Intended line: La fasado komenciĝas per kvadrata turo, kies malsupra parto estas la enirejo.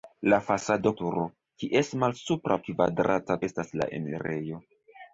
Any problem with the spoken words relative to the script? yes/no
yes